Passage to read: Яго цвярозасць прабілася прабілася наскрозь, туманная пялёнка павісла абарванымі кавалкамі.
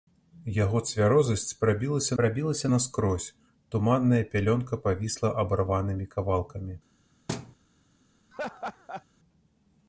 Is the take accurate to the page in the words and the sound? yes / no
no